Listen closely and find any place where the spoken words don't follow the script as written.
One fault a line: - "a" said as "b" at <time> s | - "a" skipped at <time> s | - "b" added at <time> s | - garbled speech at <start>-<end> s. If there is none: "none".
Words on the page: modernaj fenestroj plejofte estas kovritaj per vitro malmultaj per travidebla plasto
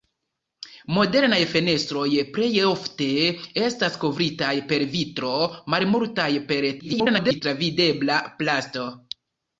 - garbled speech at 6.8-7.4 s